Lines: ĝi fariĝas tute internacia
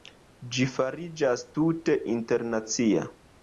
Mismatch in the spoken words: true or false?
false